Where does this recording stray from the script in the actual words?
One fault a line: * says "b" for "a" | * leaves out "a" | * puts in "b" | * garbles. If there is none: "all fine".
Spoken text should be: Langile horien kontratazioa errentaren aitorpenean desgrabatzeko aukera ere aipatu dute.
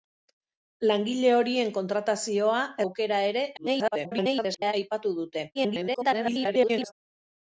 * leaves out "errentaren aitorpenean desgrabatzeko"
* garbles
* garbles